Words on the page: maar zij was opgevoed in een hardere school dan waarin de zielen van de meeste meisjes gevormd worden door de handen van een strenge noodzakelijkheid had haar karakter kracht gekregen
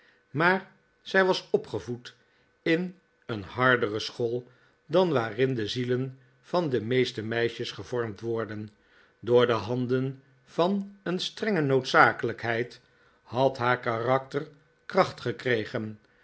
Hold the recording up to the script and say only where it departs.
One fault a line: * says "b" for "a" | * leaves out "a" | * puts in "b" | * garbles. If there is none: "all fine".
all fine